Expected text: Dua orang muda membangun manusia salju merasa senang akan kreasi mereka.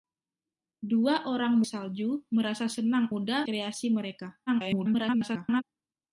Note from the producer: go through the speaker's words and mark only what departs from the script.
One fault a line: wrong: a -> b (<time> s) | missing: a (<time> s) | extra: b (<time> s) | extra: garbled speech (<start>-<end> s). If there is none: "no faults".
missing: muda membangun manusia (1.6 s)
wrong: akan -> muda (3.1 s)
extra: garbled speech (4.5-5.6 s)